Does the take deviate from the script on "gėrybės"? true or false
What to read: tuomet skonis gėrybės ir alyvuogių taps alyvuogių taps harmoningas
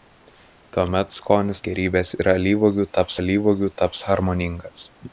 false